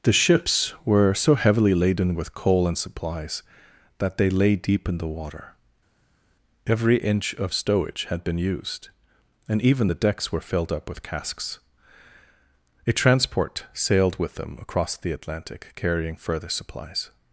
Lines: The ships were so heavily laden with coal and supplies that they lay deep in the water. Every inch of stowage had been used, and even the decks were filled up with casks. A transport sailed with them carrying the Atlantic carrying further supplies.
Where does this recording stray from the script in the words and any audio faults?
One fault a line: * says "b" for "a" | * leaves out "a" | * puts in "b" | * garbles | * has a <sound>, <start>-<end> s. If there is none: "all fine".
* says "across" for "carrying"